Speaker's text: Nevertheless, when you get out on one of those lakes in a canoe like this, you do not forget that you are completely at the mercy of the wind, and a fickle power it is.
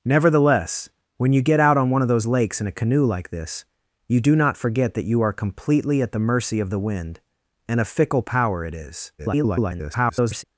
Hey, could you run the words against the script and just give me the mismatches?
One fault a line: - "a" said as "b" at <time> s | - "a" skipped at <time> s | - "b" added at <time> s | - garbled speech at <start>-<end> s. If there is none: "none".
- garbled speech at 9.2-10.4 s